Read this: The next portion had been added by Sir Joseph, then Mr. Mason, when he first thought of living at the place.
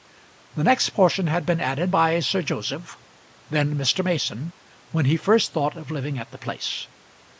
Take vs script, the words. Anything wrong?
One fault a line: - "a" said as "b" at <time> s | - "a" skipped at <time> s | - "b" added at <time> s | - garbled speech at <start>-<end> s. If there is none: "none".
none